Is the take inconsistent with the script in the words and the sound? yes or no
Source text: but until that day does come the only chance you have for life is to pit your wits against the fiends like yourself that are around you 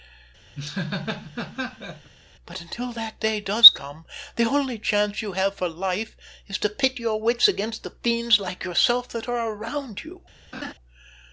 yes